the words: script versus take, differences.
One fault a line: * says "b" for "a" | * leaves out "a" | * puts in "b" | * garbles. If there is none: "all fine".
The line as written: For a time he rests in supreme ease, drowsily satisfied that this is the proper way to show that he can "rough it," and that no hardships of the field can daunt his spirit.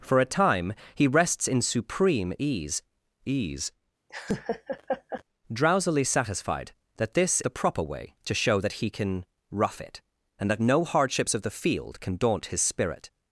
* puts in "ease"
* leaves out "is"